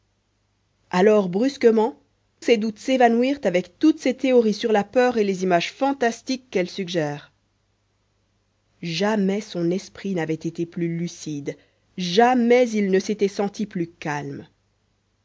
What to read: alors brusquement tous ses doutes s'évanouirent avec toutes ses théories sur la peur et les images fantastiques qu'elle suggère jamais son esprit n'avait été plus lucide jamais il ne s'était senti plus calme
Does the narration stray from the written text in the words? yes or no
yes